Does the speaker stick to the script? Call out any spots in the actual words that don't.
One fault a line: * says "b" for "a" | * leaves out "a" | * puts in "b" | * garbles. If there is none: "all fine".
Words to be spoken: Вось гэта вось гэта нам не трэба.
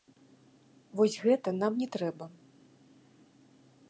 * leaves out "вось гэта"